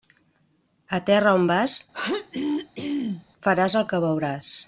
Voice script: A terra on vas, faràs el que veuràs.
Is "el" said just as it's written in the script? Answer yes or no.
yes